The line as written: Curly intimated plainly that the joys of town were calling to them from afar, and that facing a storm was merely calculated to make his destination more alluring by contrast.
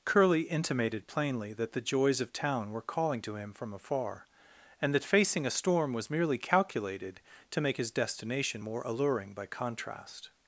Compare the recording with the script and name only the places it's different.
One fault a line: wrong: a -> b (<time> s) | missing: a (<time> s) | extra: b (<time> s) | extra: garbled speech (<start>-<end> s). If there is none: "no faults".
wrong: them -> him (3.4 s)